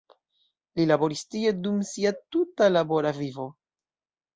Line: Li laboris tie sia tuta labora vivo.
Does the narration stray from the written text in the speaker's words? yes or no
yes